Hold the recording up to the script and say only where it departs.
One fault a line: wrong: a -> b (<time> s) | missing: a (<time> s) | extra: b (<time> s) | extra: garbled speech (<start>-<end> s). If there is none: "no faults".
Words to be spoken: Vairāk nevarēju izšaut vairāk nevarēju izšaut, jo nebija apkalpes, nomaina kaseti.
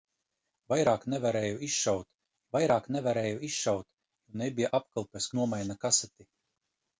no faults